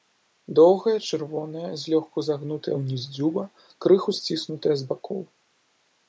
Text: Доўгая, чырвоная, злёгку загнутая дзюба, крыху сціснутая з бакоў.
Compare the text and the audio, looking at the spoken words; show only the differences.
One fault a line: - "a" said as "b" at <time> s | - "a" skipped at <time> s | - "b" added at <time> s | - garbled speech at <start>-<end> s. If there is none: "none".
- "ўніз" added at 2.8 s